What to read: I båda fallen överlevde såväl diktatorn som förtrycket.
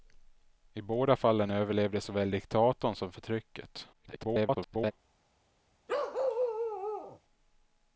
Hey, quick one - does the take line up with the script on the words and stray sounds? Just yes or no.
no